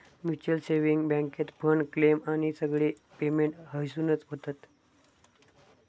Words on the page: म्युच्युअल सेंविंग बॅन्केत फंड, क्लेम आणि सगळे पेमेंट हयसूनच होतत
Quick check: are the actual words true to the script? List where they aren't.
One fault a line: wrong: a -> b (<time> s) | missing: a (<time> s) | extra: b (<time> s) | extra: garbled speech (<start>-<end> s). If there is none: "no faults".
no faults